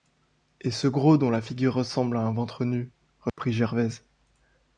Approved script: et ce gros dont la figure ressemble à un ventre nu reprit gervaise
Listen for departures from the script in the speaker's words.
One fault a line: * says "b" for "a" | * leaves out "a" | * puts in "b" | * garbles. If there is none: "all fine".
all fine